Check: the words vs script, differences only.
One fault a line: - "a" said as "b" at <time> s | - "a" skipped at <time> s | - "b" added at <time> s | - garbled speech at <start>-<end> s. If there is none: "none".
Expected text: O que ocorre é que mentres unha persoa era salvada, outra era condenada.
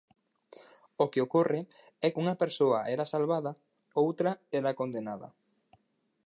- "que mentres" skipped at 2.1 s